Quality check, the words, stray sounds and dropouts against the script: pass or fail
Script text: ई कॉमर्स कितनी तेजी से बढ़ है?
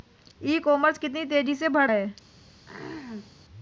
fail